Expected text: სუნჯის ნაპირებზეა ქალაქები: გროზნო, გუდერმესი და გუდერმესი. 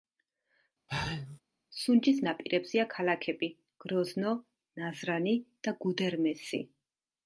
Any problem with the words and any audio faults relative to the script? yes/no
yes